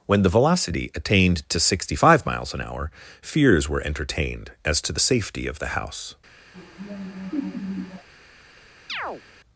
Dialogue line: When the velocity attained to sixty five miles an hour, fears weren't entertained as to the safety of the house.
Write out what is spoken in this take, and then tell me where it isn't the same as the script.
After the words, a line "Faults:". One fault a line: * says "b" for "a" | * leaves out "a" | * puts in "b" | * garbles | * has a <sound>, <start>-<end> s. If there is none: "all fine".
When the velocity attained to sixty five miles an hour, fears were entertained as to the safety of the house.
Faults:
* says "were" for "weren't"
* has a laugh, 6.5-8.1 s
* has a chirp, 8.9-9.2 s